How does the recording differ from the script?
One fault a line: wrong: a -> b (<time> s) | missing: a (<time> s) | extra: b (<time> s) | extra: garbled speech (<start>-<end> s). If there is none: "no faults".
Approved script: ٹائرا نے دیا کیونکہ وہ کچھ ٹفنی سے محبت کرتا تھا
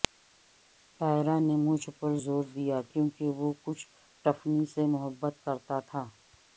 extra: مجھ پر زور (1.6 s)